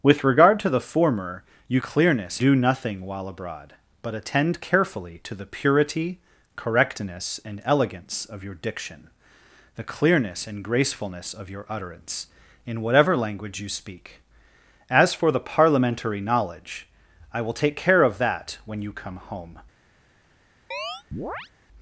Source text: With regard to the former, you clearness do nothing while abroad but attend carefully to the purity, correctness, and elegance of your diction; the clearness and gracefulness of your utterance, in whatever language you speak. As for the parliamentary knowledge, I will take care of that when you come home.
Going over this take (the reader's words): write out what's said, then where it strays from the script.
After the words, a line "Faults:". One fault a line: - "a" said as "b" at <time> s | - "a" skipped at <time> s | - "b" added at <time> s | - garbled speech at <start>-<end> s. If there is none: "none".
With regard to the former, you clearness do nothing while abroad but attend carefully to the purity, correctness, and elegance of your diction; the clearness and gracefulness of your utterance, in whatever language you speak. As for the parliamentary knowledge, I will take care of that when you come home.
Faults:
none